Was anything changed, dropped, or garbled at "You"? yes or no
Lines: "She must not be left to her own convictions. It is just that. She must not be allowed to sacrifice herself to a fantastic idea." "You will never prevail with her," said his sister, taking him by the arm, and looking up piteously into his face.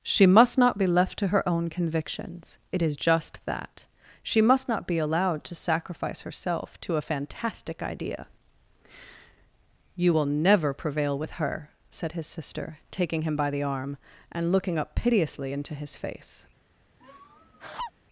no